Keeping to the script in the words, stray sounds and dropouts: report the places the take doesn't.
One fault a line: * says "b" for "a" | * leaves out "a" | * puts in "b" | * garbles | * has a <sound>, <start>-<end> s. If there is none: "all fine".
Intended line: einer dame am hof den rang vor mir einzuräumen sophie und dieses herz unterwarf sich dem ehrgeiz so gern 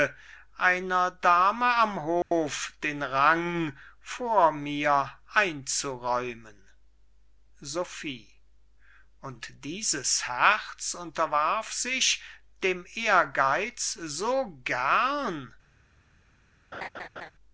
* has a dropout, 2.2-2.3 s
* has a laugh, 16.7-17.3 s